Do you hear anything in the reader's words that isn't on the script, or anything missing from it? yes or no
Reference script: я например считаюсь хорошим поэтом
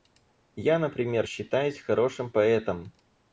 no